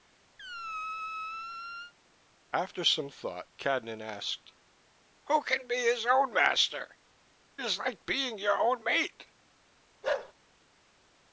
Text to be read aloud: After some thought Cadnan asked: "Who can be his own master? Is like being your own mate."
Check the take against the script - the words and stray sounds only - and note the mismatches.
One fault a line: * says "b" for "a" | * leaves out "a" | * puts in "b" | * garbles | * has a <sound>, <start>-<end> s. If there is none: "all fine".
* has a squeak, 0.4-1.9 s
* has a bark, 10.0-10.3 s